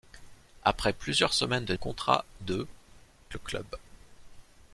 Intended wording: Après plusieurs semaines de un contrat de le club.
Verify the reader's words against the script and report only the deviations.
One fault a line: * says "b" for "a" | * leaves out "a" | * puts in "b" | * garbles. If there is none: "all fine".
all fine